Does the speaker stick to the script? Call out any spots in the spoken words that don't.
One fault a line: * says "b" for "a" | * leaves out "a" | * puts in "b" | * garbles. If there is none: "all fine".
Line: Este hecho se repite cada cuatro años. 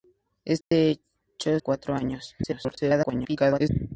* leaves out "se repite cada"
* garbles